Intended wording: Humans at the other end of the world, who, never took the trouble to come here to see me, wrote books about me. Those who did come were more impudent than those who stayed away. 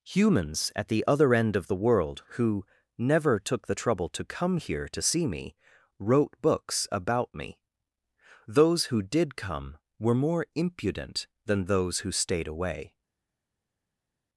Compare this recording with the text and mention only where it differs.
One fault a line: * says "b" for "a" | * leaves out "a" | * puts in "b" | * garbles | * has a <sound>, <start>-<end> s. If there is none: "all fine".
all fine